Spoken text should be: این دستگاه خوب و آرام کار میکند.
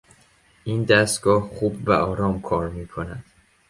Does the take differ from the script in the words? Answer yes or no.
no